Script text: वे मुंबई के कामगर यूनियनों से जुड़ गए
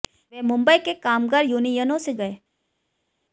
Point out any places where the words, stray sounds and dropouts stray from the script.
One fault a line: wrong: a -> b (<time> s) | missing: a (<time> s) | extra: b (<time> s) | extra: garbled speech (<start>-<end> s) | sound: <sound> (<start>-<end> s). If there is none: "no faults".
missing: जुड़ (2.1 s)